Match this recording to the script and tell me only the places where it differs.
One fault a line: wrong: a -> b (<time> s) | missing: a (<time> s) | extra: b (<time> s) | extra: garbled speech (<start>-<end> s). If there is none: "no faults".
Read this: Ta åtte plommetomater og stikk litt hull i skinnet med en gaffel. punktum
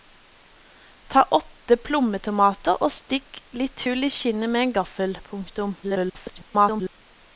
extra: garbled speech (5.8-7.0 s)